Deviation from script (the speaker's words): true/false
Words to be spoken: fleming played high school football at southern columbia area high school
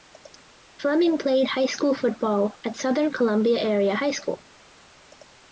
false